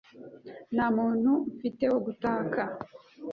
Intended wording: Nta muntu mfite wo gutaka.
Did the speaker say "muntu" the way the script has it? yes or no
yes